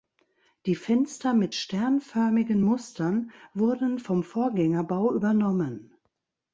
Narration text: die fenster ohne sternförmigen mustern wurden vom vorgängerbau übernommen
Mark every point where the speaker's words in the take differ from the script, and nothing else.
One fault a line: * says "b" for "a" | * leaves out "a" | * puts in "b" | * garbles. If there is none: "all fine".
* says "mit" for "ohne"